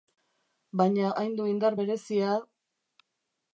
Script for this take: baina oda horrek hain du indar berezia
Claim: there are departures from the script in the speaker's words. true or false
true